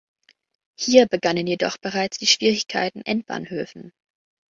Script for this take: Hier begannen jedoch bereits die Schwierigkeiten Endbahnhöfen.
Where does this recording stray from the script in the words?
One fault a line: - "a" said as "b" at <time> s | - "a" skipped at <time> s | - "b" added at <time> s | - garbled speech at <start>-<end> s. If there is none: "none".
none